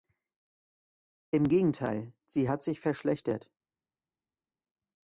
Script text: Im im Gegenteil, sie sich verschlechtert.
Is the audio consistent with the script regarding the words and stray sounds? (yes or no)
no